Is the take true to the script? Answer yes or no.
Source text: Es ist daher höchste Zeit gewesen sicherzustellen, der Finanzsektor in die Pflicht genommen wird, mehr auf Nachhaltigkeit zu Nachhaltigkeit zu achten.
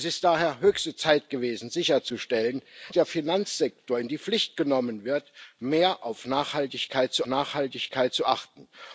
yes